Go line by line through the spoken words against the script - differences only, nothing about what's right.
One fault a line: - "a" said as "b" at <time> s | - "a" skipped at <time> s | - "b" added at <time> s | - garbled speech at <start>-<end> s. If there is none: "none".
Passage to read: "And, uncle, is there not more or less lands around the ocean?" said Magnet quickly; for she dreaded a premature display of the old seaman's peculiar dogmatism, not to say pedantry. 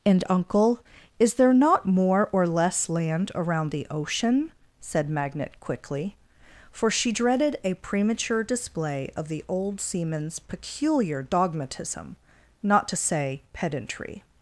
- "lands" said as "land" at 2.9 s